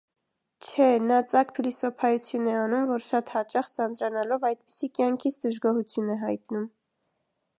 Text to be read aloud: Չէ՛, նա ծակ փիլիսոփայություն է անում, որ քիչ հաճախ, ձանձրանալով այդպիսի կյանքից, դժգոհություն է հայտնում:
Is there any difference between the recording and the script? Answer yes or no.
yes